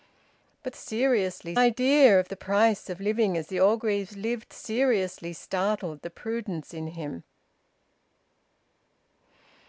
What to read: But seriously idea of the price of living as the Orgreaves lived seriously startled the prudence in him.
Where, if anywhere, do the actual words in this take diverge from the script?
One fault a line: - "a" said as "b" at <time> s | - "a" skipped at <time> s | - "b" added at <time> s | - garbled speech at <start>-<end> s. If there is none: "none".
none